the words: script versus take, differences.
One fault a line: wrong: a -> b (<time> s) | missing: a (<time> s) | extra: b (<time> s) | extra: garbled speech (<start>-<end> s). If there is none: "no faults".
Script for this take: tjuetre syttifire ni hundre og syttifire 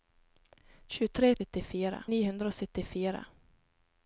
no faults